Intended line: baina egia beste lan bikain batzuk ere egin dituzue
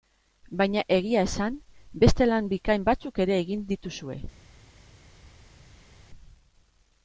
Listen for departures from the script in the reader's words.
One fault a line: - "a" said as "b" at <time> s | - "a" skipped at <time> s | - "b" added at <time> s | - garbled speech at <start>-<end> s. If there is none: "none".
- "esan" added at 1.3 s